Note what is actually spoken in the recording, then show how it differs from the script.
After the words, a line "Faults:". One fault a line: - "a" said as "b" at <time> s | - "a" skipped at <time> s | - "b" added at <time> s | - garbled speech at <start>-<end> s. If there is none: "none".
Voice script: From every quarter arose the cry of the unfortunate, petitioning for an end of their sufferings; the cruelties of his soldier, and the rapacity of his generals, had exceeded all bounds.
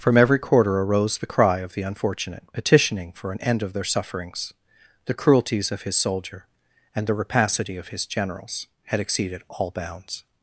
From every quarter arose the cry of the unfortunate, petitioning for an end of their sufferings; the cruelties of his soldier, and the rapacity of his generals, had exceeded all bounds.
Faults:
none